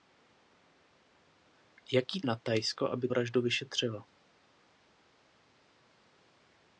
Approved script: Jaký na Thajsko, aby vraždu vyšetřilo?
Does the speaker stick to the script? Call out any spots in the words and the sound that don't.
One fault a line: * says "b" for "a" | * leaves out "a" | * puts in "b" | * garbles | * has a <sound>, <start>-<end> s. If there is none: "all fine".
all fine